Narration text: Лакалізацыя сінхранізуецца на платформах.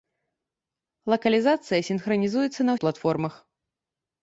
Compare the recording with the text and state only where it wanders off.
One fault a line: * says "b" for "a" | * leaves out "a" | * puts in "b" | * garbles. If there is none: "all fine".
all fine